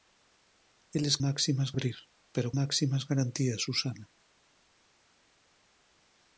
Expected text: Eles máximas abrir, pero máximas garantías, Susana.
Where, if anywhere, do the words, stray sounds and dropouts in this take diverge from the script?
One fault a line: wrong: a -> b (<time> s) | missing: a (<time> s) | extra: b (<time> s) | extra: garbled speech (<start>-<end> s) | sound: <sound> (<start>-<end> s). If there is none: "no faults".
no faults